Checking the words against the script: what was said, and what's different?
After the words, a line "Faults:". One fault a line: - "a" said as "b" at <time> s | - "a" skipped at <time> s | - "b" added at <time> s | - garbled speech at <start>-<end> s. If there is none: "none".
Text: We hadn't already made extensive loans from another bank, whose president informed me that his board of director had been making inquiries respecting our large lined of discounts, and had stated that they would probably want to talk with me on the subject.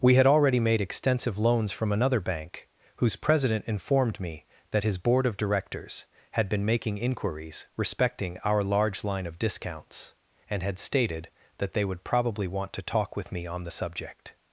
We had already made extensive loans from another bank, whose president informed me that his board of directors had been making inquiries respecting our large line of discounts, and had stated that they would probably want to talk with me on the subject.
Faults:
- "hadn't" said as "had" at 0.1 s
- "director" said as "directors" at 5.4 s
- "lined" said as "line" at 9.0 s